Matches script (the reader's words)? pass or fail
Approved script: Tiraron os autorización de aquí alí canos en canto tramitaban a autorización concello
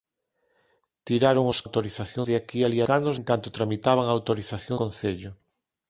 pass